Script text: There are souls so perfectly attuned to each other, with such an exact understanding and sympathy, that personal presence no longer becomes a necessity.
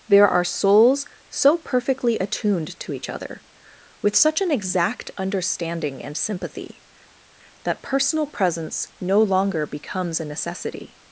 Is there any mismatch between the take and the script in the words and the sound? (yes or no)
no